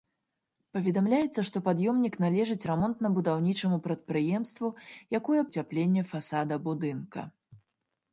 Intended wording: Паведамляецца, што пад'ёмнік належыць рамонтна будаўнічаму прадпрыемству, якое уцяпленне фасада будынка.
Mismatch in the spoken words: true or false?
false